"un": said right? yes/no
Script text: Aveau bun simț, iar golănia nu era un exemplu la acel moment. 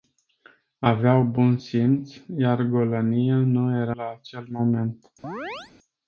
no